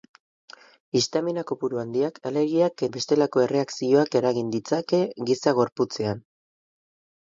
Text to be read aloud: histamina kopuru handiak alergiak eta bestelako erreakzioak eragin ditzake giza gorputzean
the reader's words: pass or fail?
fail